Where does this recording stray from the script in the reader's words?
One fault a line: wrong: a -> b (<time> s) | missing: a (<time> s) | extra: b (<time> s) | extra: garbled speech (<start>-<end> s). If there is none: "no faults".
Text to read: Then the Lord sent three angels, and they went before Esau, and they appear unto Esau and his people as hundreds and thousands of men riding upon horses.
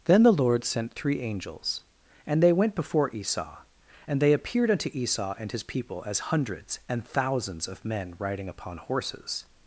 wrong: appear -> appeared (4.3 s)